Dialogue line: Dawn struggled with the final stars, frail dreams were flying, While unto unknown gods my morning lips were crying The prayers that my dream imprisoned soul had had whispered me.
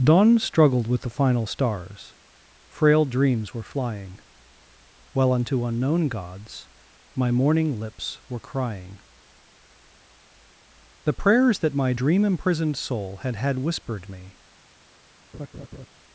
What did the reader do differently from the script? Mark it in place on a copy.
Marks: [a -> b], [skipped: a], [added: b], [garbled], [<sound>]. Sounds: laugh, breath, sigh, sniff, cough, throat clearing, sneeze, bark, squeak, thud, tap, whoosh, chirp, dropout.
Dawn struggled with the final stars, frail dreams were flying, While unto unknown gods my morning lips were crying The prayers that my dream imprisoned soul had had whispered me. [laugh]